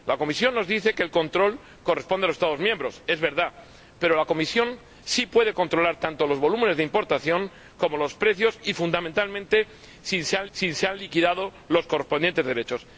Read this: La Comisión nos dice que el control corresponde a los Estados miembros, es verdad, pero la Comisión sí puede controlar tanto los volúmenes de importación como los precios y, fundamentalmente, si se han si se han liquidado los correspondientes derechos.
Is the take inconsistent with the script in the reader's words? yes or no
no